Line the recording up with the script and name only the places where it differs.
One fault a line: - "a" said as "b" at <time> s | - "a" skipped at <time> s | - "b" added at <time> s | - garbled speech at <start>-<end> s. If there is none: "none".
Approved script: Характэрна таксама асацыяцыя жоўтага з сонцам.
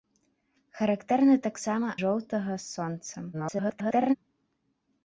- "асацыяцыя" skipped at 1.9 s
- garbled speech at 3.3-4.2 s